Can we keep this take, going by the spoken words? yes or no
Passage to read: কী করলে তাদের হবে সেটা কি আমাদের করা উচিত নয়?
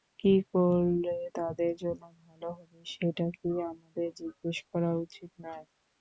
no